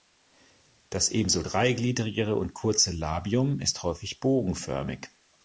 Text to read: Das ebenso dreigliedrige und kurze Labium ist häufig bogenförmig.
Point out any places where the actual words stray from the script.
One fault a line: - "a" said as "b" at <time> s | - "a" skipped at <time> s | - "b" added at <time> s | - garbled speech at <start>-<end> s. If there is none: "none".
none